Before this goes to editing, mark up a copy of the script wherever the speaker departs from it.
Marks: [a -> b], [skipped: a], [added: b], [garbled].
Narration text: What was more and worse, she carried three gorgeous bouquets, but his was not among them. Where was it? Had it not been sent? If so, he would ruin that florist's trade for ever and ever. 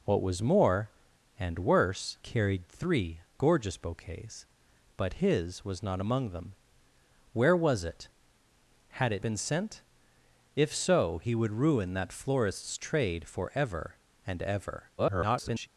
What was more and worse, [skipped: she] carried three gorgeous bouquets, but his was not among them. Where was it? Had it [skipped: not] been sent? If so, he would ruin that florist's trade for ever and ever. [garbled]